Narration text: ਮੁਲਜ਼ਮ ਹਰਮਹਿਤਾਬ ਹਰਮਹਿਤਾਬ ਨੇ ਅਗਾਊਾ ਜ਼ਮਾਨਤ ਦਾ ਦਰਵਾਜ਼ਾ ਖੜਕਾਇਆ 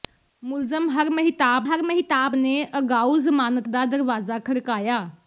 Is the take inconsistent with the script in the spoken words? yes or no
no